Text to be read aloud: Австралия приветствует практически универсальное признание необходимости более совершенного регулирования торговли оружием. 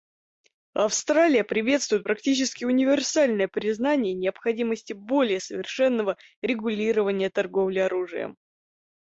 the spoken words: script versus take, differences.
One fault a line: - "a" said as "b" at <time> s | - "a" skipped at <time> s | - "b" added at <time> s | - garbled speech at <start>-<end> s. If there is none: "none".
none